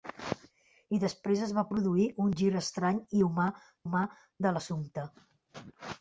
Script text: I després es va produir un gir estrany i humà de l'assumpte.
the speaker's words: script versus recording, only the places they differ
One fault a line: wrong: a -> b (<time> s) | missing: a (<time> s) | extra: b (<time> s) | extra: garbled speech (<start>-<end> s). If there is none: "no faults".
extra: humà (3.8 s)